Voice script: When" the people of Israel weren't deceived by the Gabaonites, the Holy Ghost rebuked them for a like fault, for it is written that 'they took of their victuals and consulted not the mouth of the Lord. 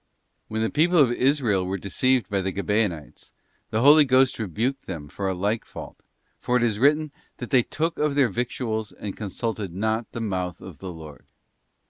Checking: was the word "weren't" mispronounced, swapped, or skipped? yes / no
yes